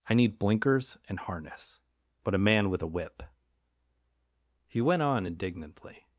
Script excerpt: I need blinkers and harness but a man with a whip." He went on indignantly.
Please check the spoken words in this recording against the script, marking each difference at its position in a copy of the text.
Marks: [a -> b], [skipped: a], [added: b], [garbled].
I need blinkers and harness but a man with a whip." He went on indignantly.